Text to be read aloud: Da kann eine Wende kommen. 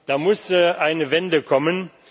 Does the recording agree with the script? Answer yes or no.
no